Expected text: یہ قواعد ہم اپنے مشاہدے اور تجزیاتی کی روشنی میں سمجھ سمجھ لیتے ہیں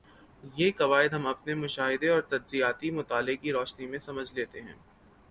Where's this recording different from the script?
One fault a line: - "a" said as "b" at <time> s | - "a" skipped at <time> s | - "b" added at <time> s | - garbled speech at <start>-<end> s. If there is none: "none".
- "مطالعے" added at 2.9 s
- "سمجھ" skipped at 4.3 s